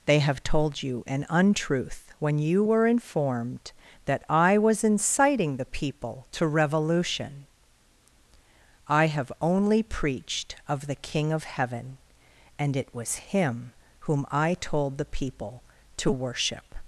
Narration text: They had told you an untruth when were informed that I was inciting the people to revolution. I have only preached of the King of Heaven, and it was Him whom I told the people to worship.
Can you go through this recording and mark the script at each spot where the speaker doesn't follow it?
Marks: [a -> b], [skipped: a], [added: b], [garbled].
They [had -> have] told you an untruth when [added: you] were informed that I was inciting the people to revolution. I have only preached of the King of Heaven, and it was Him whom I told the people to worship.